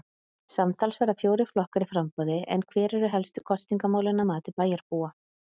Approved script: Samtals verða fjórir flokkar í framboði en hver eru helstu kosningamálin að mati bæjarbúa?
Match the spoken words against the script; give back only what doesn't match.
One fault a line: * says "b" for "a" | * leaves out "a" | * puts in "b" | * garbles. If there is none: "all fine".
all fine